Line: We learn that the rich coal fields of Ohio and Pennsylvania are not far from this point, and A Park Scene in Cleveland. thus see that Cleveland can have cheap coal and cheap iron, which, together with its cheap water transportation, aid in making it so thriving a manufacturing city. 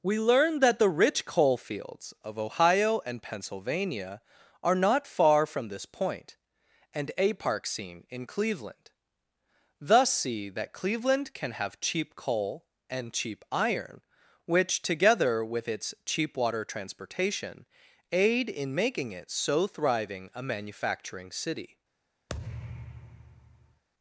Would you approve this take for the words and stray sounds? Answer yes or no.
no